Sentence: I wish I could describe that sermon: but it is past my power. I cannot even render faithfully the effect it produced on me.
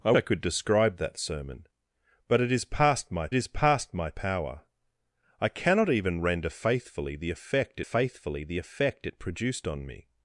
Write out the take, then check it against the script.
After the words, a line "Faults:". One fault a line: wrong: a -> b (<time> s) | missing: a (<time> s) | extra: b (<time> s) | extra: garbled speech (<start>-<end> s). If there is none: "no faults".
I I could describe that sermon: but it is past my is past my power. I cannot even render faithfully the effect faithfully the effect it produced on me.
Faults:
missing: wish (0.1 s)
extra: is past my (3.3 s)
extra: faithfully the effect (7.8 s)